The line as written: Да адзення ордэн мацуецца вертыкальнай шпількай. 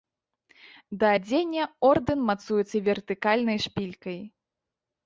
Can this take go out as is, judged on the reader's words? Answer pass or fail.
pass